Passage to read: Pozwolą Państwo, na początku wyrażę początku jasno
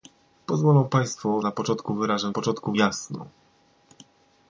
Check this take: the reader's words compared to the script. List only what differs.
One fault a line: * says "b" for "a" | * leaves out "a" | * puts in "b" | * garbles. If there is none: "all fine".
all fine